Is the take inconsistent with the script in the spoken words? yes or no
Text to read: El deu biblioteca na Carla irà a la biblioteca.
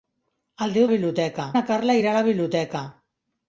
no